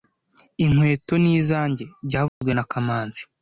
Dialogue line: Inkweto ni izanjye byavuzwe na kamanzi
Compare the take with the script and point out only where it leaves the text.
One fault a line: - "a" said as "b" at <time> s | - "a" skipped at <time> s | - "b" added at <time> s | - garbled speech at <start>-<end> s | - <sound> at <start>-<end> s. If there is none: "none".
- dropout at 2.3-2.4 s